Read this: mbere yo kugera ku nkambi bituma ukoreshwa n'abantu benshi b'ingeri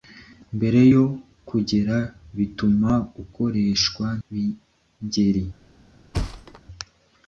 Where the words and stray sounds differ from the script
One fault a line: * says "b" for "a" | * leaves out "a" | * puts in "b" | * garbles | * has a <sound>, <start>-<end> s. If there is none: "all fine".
* leaves out "ku nkambi"
* leaves out "n'abantu benshi"
* has a thud, 6.1-6.6 s